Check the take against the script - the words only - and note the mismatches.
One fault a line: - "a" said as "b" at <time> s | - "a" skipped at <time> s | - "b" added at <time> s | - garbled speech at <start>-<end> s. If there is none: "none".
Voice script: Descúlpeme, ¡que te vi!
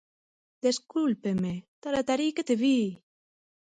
- "taratarí" added at 1.8 s